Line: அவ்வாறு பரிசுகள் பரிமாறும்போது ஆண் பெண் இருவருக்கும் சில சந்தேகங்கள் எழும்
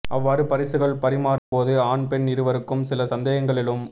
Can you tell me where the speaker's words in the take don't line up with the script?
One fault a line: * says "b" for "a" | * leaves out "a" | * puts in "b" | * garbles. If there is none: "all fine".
all fine